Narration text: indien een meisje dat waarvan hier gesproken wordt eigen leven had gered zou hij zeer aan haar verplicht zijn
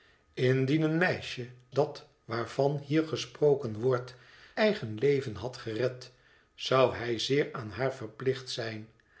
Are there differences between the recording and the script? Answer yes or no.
no